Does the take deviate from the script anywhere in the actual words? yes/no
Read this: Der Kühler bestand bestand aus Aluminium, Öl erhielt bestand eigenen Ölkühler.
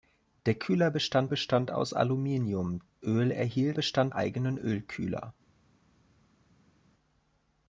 no